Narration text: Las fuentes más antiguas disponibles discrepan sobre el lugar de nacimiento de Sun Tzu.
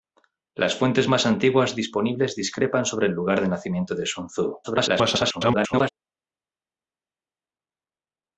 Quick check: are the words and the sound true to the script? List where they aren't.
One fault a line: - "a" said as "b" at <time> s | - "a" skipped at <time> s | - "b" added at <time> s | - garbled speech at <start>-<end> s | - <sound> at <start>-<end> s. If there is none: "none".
- garbled speech at 4.6-5.9 s